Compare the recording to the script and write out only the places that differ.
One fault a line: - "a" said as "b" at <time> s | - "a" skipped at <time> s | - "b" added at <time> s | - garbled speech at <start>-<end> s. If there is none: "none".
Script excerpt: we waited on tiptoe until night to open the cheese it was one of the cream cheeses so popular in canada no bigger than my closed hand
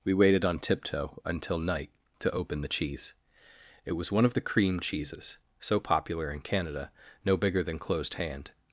- "my" skipped at 7.8 s